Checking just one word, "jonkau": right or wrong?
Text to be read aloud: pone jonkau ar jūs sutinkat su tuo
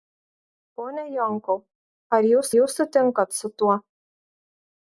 right